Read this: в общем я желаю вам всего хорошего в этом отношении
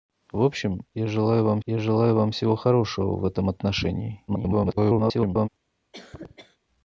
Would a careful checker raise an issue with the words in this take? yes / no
yes